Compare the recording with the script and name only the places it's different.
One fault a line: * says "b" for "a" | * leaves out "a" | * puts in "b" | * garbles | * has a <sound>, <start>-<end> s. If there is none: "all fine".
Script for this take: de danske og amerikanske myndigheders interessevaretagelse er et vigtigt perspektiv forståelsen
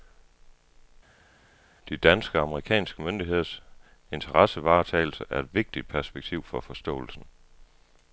* puts in "for"